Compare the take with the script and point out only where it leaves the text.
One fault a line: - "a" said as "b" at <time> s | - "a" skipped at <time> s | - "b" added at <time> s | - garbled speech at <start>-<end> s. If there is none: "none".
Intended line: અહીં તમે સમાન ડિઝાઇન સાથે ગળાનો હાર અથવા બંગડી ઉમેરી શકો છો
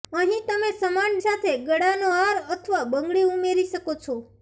- "ડિઝાઇન" skipped at 1.2 s